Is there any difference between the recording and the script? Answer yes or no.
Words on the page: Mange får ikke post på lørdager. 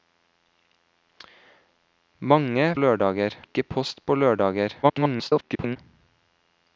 yes